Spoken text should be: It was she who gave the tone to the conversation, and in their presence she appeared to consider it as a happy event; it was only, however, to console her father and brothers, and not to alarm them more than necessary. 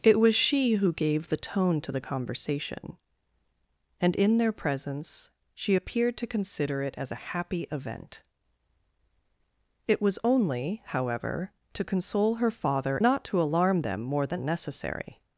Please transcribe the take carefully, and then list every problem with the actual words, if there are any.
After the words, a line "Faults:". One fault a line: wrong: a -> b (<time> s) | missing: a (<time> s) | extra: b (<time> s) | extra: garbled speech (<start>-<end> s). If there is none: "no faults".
It was she who gave the tone to the conversation, and in their presence she appeared to consider it as a happy event; it was only, however, to console her father not to alarm them more than necessary.
Faults:
missing: and brothers and (13.0 s)